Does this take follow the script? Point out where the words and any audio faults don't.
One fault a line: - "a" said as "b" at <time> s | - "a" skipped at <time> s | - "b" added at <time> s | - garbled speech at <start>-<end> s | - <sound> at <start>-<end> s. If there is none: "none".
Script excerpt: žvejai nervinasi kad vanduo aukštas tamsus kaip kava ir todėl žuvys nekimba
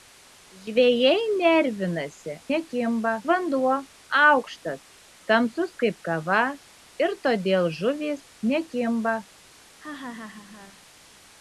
- "kad" said as "nekimba" at 2.5 s
- laugh at 9.8-10.8 s